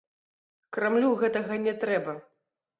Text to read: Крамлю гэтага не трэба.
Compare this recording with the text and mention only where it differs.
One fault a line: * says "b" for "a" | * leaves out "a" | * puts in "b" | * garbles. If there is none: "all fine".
all fine